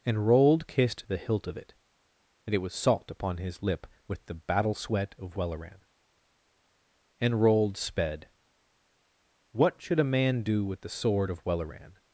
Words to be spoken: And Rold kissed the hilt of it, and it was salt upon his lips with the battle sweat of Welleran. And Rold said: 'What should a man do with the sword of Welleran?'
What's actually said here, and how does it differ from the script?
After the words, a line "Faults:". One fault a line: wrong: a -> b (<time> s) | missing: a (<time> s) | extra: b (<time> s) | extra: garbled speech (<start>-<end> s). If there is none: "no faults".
And Rold kissed the hilt of it, and it was salt upon his lip with the battle sweat of Welleran. And Rold sped: 'What should a man do with the sword of Welleran?'
Faults:
wrong: lips -> lip (3.6 s)
wrong: said -> sped (7.8 s)